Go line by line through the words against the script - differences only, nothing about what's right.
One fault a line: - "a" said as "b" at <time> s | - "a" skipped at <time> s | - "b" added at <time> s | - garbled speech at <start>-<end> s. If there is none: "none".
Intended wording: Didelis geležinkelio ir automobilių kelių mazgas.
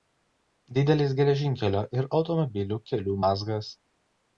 none